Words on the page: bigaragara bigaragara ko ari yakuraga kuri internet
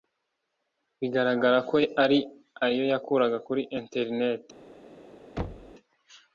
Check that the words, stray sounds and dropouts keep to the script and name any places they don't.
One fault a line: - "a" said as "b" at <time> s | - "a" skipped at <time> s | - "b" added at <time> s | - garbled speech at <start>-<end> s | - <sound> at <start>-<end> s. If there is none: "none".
- "bigaragara" skipped at 1.6 s
- "ayo" added at 2.6 s
- thud at 5.4-5.7 s